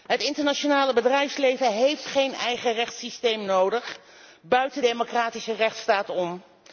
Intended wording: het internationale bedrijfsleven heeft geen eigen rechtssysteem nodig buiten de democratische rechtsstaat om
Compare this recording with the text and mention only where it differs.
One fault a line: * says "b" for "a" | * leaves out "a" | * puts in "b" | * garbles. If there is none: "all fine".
* leaves out "de"